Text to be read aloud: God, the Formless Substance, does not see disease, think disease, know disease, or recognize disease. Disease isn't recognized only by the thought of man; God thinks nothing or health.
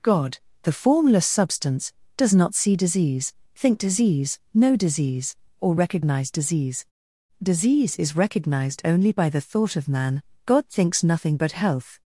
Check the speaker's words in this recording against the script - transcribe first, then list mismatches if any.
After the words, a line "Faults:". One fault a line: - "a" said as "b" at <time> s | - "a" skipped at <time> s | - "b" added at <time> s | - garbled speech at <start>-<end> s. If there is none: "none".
God, the Formless Substance, does not see disease, think disease, know disease, or recognize disease. Disease is recognized only by the thought of man; God thinks nothing but health.
Faults:
- "isn't" said as "is" at 8.0 s
- "or" said as "but" at 11.4 s